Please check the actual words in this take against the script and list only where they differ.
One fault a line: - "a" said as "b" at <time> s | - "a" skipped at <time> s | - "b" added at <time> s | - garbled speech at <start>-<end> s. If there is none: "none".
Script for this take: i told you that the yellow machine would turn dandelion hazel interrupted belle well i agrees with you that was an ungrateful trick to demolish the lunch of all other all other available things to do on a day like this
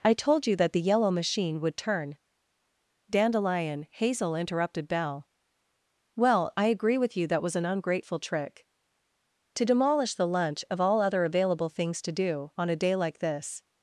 - "agrees" said as "agree" at 6.7 s
- "all other" skipped at 11.2 s